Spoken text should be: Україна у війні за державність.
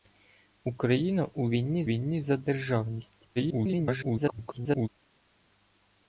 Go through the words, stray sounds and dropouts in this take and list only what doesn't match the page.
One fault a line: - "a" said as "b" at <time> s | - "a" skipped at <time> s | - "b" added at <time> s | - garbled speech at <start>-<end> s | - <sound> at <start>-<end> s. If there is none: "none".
- "війні" added at 1.8 s
- garbled speech at 3.4-4.9 s